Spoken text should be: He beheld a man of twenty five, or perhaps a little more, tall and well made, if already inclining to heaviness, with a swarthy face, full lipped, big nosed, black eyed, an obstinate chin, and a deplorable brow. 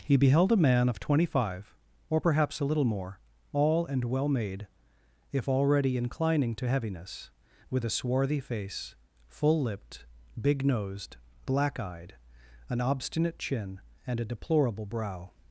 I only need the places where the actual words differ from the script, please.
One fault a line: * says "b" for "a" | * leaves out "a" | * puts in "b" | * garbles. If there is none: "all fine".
* says "all" for "tall"